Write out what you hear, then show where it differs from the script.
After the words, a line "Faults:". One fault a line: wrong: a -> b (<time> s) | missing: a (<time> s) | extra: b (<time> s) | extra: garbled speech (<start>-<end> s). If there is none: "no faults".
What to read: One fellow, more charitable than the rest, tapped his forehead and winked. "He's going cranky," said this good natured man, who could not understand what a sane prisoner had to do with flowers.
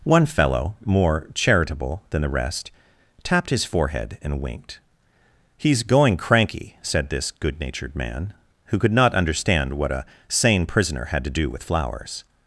One fellow, more charitable than the rest, tapped his forehead and winked. "He's going cranky," said this good natured man, who could not understand what a sane prisoner had to do with flowers.
Faults:
no faults